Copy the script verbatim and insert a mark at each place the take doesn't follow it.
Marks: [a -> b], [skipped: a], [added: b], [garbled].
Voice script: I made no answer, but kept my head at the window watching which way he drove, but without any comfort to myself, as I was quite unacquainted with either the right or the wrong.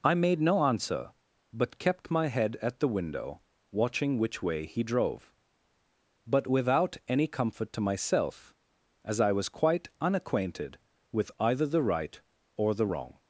I made no answer, but kept my head at the window watching which way he drove, but without any comfort to myself, as I was quite unacquainted with either the right or the wrong.